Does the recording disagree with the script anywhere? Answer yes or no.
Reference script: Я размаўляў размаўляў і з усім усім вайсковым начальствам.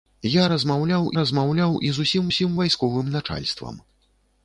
no